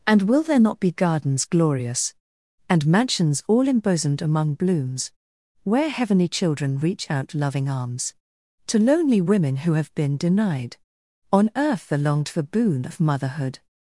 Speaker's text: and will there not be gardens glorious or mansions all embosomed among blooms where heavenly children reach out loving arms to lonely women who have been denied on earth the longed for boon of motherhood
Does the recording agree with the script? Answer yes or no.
no